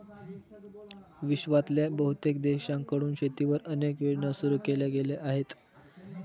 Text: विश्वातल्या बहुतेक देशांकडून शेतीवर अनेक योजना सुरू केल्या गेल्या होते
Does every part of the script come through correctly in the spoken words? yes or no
no